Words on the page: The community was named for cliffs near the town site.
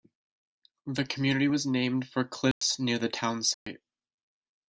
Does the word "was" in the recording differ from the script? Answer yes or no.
no